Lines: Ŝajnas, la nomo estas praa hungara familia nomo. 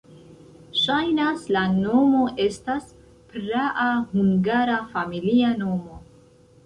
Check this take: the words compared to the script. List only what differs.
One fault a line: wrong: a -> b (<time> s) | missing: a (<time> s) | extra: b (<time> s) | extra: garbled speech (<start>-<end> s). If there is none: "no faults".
no faults